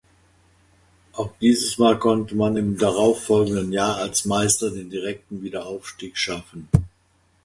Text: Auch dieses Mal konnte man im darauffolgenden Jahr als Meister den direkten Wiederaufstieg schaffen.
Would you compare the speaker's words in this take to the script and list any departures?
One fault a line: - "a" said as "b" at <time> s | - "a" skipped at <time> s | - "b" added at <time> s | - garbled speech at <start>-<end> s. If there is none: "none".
none